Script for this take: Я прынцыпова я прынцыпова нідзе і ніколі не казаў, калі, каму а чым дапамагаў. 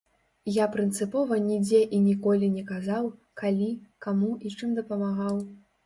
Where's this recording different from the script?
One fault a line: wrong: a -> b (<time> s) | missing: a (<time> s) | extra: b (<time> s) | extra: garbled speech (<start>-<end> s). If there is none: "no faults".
missing: я прынцыпова (1.4 s)
wrong: а -> і (4.5 s)